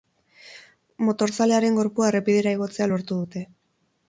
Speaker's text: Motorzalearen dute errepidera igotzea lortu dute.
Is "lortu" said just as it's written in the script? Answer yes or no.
yes